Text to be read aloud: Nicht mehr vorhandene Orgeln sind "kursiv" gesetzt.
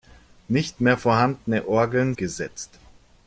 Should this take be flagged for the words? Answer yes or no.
yes